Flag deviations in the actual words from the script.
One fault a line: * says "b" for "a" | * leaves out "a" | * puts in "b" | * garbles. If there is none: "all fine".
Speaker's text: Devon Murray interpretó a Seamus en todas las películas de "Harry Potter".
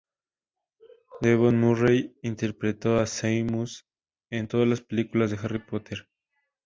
all fine